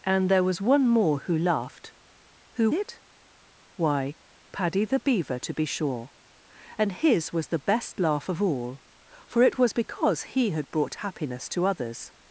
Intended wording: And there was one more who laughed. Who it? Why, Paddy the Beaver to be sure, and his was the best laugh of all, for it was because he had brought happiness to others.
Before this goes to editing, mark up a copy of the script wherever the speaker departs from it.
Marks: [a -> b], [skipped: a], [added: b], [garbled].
And there was one more who laughed. Who it? Why, Paddy the Beaver to be sure, and his was the best laugh of all, for it was because he had brought happiness to others.